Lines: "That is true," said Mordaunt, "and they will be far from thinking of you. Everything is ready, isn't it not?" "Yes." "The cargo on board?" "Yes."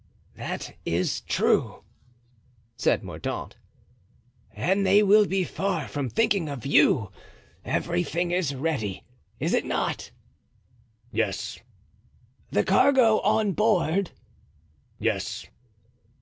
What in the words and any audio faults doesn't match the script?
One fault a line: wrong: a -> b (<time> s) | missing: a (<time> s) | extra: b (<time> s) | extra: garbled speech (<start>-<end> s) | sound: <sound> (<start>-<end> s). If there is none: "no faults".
wrong: isn't -> is (9.4 s)